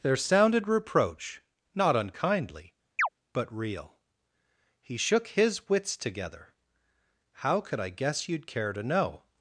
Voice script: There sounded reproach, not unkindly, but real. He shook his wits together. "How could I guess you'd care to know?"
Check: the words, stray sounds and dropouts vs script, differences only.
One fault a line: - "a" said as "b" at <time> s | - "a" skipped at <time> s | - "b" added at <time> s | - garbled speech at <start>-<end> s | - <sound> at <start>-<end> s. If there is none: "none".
- chirp at 3.0-3.1 s